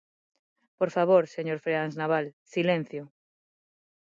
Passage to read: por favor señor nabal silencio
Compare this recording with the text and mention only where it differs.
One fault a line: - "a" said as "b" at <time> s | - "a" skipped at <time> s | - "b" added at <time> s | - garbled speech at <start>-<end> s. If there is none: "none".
- "freáns" added at 1.6 s